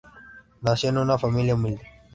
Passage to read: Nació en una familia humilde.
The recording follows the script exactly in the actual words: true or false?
true